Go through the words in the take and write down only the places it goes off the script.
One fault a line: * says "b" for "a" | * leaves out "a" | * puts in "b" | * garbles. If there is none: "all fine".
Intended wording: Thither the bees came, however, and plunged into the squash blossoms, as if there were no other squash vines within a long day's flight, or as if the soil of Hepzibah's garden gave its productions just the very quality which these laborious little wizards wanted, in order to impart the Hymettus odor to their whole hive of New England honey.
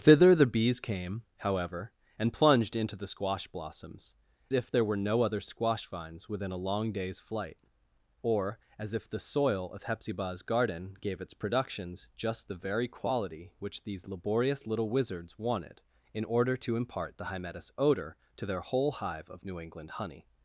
* leaves out "as"